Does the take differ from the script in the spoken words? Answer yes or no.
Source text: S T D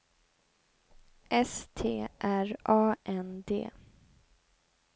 yes